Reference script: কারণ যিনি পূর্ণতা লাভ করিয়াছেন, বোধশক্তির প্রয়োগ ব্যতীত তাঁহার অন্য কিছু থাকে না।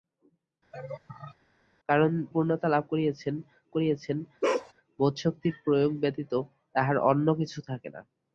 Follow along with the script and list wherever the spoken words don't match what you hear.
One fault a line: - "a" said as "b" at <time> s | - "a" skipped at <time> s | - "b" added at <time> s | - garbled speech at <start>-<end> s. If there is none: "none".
- "যিনি" skipped at 2.1 s
- "করিয়াছেন" added at 3.7 s